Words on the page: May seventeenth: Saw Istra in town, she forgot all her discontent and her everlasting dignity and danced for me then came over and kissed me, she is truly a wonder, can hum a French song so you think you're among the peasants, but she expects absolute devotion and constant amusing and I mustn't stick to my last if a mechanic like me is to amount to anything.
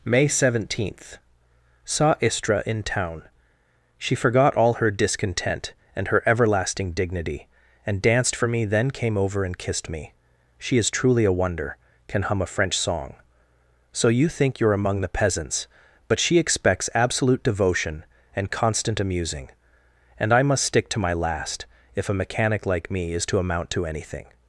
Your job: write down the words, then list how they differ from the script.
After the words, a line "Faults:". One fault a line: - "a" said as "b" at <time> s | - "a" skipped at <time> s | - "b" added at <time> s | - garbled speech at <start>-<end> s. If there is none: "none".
May seventeenth: Saw Istra in town, she forgot all her discontent and her everlasting dignity and danced for me then came over and kissed me, she is truly a wonder, can hum a French song so you think you're among the peasants, but she expects absolute devotion and constant amusing and I must stick to my last if a mechanic like me is to amount to anything.
Faults:
- "mustn't" said as "must" at 20.4 s